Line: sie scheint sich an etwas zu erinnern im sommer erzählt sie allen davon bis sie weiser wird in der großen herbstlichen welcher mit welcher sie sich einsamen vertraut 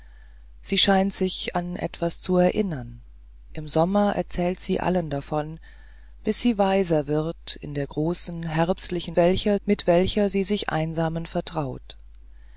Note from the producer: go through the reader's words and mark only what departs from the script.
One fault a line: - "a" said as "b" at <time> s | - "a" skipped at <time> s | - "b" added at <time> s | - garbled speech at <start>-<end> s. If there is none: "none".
none